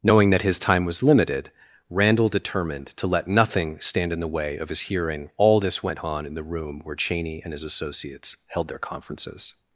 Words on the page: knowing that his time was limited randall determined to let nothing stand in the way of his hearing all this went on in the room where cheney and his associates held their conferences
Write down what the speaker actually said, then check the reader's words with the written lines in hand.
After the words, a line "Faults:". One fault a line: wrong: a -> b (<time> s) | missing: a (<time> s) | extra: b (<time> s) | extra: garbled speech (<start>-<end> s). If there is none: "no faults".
knowing that his time was limited randall determined to let nothing stand in the way of his hearing all this went on in the room where cheney and his associates held their conferences
Faults:
no faults